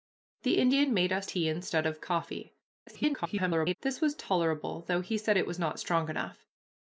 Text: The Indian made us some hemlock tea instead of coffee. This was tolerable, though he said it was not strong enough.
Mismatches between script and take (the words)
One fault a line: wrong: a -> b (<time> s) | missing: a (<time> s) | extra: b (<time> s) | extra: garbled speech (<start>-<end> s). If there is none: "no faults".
missing: some hemlock (1.3 s)
extra: garbled speech (2.9-3.8 s)